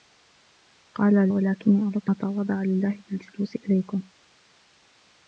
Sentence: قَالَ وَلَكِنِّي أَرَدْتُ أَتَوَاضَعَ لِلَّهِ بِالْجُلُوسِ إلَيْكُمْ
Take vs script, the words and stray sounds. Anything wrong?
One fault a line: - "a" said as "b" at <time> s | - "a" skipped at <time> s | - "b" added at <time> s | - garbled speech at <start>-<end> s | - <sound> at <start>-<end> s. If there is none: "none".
none